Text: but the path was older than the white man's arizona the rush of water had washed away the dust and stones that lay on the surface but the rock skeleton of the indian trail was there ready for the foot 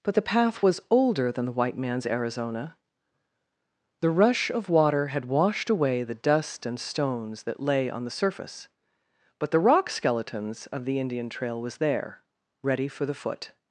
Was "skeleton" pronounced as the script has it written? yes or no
no